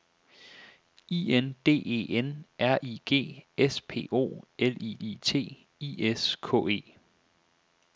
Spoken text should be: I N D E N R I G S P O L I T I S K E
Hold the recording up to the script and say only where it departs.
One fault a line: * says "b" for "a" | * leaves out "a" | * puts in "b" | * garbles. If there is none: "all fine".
* puts in "I"